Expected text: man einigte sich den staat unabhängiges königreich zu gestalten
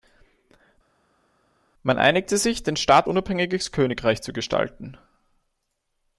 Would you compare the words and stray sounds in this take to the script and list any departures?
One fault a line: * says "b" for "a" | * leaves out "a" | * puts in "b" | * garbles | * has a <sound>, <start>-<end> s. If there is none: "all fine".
all fine